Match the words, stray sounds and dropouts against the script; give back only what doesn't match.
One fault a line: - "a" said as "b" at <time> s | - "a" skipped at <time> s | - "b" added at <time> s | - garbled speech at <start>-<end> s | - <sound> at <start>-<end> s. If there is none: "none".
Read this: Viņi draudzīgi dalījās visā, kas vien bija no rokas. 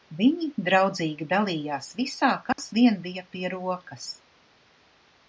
- dropout at 2.5-2.6 s
- "no" said as "pie" at 3.3 s